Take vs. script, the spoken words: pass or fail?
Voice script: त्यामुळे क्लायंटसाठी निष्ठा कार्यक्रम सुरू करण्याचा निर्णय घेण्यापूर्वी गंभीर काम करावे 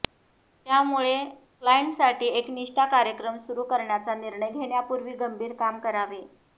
fail